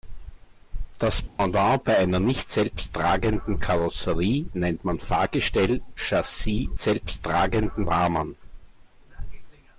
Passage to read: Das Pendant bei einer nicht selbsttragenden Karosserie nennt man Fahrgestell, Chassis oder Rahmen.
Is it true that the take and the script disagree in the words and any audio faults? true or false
true